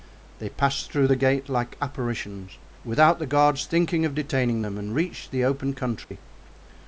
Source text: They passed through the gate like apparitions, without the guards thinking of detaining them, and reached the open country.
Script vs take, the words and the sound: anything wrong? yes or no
yes